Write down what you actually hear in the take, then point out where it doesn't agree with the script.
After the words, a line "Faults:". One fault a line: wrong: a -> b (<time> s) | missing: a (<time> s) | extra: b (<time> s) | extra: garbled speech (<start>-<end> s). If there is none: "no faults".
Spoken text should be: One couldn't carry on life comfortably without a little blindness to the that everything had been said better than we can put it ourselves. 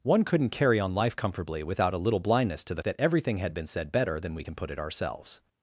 One couldn't carry on life comfortably without a little blindness to the that everything had been said better than we can put it ourselves.
Faults:
no faults